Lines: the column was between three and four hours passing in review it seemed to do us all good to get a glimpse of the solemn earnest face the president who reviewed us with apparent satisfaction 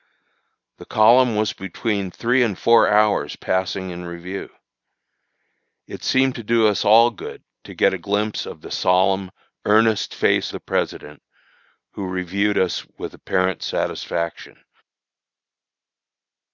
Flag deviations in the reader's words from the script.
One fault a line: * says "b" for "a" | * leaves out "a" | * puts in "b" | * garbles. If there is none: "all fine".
all fine